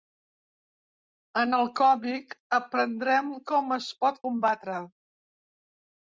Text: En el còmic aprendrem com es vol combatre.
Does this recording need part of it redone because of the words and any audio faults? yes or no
yes